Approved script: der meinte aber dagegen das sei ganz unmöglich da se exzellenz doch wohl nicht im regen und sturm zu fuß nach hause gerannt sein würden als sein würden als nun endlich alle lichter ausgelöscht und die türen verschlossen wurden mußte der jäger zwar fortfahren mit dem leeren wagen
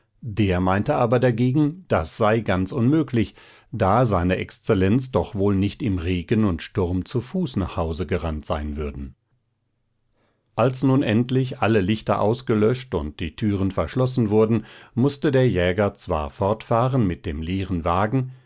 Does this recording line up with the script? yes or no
no